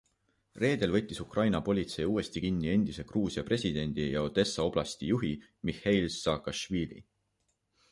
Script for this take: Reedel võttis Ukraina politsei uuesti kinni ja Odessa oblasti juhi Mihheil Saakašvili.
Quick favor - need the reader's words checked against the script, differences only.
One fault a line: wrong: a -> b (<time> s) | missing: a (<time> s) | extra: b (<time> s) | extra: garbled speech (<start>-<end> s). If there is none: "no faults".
extra: endise Gruusia presidendi (2.8 s)